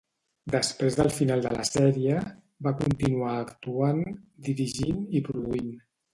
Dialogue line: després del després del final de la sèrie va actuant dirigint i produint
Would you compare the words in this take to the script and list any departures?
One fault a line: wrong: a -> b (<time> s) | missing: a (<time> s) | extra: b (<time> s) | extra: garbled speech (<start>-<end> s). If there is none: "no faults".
missing: després del (1.1 s)
extra: continuar (2.8 s)